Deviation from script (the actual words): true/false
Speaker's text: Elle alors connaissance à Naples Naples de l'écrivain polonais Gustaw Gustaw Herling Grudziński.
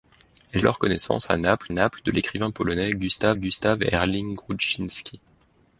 false